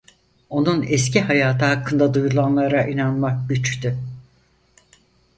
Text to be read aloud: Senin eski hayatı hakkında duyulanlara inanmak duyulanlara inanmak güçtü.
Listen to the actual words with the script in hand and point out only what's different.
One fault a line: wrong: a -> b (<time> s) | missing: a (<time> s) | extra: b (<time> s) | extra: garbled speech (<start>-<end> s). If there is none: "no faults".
wrong: Senin -> Onun (0.5 s)
missing: duyulanlara inanmak (3.5 s)